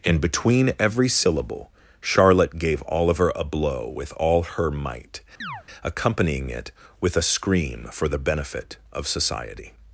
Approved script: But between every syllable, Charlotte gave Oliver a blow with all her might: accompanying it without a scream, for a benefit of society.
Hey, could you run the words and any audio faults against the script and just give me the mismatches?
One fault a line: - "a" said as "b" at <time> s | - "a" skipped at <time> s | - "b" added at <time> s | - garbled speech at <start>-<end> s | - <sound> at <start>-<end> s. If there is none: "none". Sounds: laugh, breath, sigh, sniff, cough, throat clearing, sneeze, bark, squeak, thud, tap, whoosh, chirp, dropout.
- "But" said as "And" at 0.0 s
- chirp at 5.4-5.6 s
- "without" said as "with" at 7.0 s
- "a" said as "the" at 8.1 s